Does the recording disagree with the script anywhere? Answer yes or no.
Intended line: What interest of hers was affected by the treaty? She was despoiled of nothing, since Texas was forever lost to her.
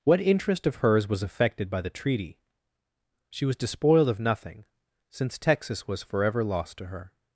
no